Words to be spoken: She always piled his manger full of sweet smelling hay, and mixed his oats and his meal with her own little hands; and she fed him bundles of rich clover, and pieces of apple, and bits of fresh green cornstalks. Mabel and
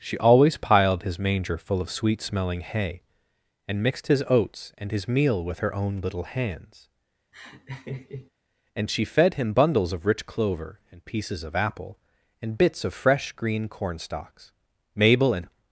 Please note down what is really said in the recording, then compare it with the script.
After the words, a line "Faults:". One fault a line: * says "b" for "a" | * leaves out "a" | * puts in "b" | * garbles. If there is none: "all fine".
She always piled his manger full of sweet smelling hay, and mixed his oats and his meal with her own little hands; and she fed him bundles of rich clover, and pieces of apple, and bits of fresh green cornstalks. Mabel and
Faults:
all fine